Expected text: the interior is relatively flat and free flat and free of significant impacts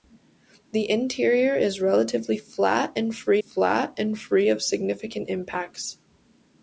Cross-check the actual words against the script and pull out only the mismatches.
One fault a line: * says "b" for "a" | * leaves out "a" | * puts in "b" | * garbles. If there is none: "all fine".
all fine